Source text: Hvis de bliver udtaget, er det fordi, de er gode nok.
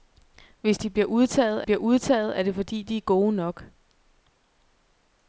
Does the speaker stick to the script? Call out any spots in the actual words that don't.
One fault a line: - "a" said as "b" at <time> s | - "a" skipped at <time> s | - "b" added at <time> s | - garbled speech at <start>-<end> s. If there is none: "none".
- "bliver udtaget" added at 1.6 s